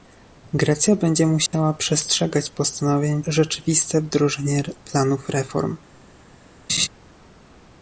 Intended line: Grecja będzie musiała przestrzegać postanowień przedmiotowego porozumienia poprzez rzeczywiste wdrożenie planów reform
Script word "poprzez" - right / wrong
wrong